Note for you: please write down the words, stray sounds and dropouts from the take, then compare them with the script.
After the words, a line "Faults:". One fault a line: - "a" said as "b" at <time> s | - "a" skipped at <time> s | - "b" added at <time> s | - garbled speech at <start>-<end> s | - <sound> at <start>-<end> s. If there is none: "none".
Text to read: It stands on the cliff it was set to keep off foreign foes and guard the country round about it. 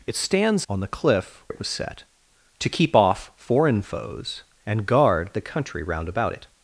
It stands on the cliff it was set to keep off foreign foes and guard the country round about it.
Faults:
none